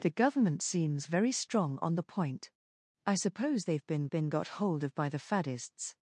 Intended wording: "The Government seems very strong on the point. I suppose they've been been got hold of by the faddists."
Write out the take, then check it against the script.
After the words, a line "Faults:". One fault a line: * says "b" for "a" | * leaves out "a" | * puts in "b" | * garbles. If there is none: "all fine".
"The Government seems very strong on the point. I suppose they've been been got hold of by the faddists."
Faults:
all fine